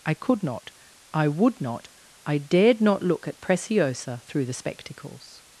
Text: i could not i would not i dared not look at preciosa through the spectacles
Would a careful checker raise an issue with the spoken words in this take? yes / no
no